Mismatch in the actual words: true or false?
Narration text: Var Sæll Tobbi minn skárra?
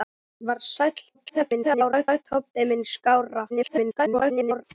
true